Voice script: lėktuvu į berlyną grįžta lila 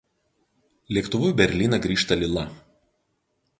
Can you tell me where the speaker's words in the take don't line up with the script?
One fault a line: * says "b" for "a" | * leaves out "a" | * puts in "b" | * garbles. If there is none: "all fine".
all fine